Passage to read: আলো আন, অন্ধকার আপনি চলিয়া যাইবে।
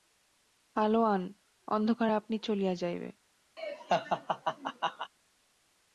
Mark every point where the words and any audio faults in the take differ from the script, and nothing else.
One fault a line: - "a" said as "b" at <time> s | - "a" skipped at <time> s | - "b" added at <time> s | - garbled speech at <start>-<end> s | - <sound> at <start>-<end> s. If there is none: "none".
- laugh at 3.6-5.1 s